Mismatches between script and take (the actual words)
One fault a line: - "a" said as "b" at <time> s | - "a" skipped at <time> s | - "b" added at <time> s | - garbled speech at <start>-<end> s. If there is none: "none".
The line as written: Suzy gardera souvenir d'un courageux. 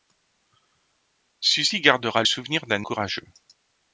none